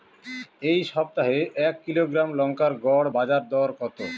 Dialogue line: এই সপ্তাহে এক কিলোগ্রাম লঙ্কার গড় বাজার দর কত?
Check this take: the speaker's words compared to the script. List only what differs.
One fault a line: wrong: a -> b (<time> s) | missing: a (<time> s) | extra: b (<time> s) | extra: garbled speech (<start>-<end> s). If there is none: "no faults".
no faults